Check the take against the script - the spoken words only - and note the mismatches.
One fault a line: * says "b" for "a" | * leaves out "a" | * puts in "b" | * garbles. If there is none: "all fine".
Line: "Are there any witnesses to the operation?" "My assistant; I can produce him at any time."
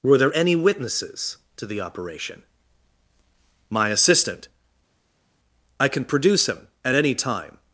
* says "Were" for "Are"